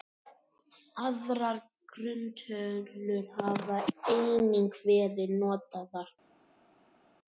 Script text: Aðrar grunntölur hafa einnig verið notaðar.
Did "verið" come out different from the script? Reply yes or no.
no